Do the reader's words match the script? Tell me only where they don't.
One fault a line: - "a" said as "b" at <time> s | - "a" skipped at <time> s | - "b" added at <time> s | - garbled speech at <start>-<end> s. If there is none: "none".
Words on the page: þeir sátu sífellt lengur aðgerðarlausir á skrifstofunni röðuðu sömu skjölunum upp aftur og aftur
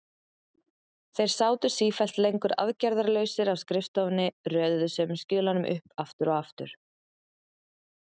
none